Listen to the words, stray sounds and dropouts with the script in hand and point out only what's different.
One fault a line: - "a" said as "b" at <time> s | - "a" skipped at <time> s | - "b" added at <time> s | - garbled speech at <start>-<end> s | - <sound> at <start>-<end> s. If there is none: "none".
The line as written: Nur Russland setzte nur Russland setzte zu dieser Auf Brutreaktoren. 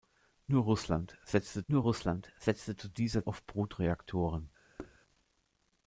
- thud at 4.8-5.0 s